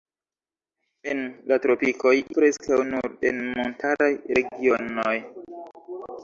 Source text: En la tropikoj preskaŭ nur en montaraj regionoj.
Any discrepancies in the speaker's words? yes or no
no